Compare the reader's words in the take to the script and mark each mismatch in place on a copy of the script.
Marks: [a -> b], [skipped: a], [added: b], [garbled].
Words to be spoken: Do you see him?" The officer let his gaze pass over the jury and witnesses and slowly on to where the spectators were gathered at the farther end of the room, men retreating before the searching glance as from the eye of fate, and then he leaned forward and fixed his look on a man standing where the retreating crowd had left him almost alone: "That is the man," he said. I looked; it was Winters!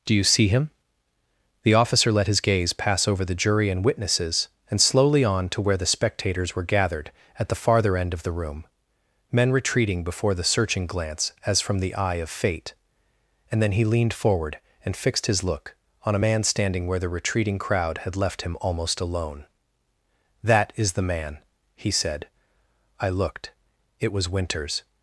Do you see him?" The officer let his gaze pass over the jury and witnesses and slowly on to where the spectators were gathered at the farther end of the room, men retreating before the searching glance as from the eye of fate, and then he leaned forward and fixed his look on a man standing where the retreating crowd had left him almost alone: "That is the man," he said. I looked; it was Winters!